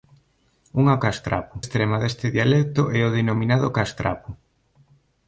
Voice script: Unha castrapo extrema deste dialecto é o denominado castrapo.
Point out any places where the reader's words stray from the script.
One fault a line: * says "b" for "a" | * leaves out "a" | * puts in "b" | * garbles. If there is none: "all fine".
all fine